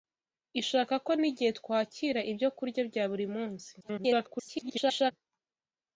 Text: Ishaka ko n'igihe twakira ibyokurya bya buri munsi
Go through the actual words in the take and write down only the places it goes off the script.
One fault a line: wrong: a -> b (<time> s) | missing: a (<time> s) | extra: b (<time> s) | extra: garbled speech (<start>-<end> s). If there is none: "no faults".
extra: garbled speech (3.8-5.1 s)